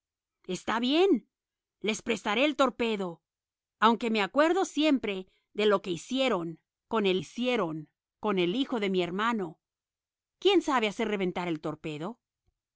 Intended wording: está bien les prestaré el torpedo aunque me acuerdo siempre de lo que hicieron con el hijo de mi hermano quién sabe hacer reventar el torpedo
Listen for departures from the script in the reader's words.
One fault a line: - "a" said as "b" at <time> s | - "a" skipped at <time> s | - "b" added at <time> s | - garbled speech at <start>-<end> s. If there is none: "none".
- "hicieron con el" added at 7.2 s